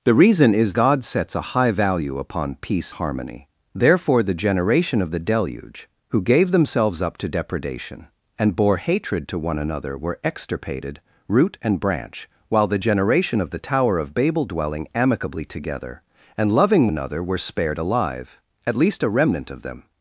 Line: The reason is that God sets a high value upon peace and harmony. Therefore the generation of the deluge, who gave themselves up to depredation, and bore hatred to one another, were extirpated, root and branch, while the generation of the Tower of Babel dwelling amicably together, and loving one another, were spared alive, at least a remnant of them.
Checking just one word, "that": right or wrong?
wrong